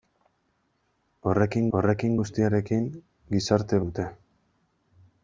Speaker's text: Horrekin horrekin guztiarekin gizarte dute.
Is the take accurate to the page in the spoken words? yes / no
yes